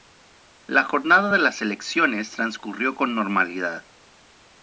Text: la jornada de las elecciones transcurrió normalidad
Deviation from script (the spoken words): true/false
true